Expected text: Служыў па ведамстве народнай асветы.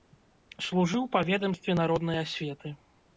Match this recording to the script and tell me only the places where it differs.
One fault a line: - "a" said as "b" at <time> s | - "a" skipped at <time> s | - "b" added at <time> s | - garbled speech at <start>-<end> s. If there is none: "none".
none